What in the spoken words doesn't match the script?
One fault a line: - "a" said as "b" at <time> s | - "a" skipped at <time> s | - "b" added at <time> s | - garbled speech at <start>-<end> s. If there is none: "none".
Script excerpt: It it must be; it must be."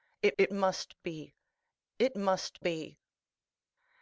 none